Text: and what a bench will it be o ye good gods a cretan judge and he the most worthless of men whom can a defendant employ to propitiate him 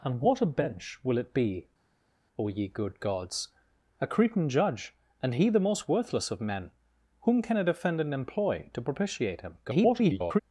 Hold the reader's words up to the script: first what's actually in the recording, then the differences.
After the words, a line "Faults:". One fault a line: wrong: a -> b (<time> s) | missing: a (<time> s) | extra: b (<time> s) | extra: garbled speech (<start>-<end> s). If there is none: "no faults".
and what a bench will it be o ye good gods a cretan judge and he the most worthless of men whom can a defendant employ to propitiate him [garbled]
Faults:
extra: garbled speech (9.6-10.4 s)